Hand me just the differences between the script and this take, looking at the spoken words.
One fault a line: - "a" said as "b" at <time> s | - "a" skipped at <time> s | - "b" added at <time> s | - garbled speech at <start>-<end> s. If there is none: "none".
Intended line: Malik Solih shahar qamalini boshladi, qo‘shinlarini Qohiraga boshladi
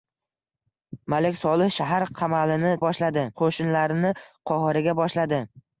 none